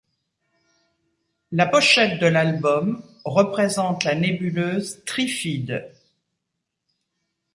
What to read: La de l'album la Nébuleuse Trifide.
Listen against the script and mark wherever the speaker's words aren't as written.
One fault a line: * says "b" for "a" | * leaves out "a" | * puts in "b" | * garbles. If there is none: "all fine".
* puts in "pochette"
* puts in "représente"